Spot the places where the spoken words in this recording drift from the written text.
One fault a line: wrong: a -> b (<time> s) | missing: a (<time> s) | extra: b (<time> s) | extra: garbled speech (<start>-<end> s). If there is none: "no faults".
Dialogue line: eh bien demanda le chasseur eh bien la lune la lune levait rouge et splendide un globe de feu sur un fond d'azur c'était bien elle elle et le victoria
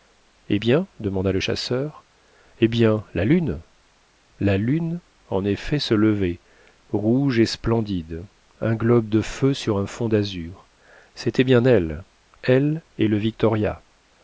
extra: en effet se (5.3 s)